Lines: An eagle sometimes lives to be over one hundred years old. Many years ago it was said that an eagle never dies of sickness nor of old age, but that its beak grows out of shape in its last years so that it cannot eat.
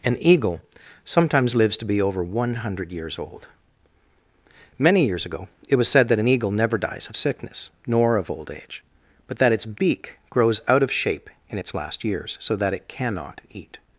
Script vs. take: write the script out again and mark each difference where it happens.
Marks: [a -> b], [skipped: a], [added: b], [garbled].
An eagle sometimes lives to be over one hundred years old. Many years ago it was said that an eagle never dies of sickness nor of old age, but that its beak grows out of shape in its last years so that it cannot eat.